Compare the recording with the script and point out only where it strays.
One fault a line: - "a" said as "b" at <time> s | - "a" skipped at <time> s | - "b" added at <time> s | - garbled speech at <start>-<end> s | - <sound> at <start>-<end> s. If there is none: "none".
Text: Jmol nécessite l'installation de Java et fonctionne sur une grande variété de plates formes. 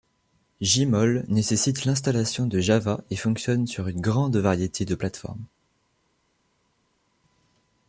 none